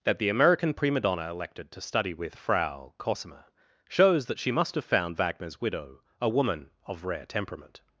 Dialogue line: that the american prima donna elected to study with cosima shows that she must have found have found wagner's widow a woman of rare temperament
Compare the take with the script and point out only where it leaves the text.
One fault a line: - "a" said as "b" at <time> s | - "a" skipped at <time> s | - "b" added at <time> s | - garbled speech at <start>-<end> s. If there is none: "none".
- "frau" added at 2.3 s
- "have found" skipped at 5.2 s